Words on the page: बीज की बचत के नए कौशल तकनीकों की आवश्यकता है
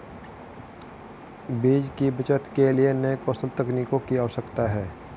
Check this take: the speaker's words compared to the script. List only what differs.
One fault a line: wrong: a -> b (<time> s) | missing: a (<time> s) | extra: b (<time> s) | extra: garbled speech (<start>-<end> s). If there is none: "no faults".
extra: लिए (2.7 s)